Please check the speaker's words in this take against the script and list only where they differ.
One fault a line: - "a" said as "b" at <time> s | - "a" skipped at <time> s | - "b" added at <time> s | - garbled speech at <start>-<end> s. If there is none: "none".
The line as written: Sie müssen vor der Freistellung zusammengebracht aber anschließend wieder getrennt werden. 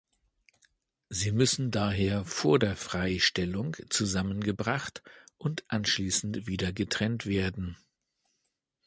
- "daher" added at 1.7 s
- "aber" said as "und" at 5.4 s